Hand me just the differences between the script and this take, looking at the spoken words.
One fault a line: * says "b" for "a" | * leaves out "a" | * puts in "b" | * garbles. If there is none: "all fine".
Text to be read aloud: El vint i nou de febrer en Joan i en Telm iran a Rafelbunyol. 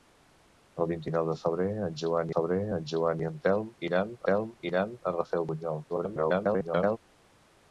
* puts in "febrer en Joan"
* puts in "Telm iran"
* garbles